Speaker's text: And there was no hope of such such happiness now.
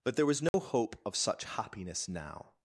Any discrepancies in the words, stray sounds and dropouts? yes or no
yes